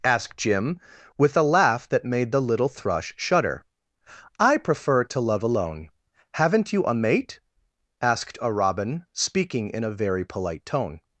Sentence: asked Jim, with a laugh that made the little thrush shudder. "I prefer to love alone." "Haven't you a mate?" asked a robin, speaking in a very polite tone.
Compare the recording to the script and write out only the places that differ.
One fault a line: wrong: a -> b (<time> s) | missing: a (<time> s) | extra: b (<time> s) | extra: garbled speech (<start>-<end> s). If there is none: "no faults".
no faults